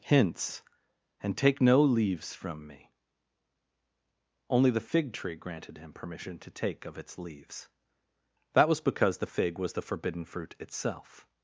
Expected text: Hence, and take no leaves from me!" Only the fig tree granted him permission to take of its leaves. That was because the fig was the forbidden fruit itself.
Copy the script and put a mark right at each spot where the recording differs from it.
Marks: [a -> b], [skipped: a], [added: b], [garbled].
[Hence, -> Hints] and take no leaves from me!" Only the fig tree granted him permission to take of its leaves. That was because the fig was the forbidden fruit itself.